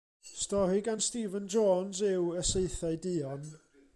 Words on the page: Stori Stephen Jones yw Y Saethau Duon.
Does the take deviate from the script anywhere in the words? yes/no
yes